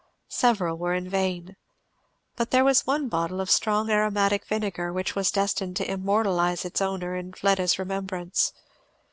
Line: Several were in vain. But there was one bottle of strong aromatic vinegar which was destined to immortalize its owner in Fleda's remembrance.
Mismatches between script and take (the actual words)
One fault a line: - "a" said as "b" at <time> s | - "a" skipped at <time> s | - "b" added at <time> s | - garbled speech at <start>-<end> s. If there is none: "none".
none